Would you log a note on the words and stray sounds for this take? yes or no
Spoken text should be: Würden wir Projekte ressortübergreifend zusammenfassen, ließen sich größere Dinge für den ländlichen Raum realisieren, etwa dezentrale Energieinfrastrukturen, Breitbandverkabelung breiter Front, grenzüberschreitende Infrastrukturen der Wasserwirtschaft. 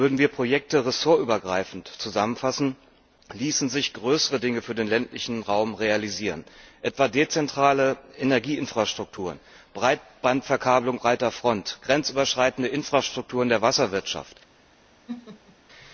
yes